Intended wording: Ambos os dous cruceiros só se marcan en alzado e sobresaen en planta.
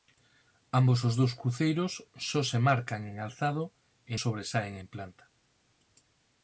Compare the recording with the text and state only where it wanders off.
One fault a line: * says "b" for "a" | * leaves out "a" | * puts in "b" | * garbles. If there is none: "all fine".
all fine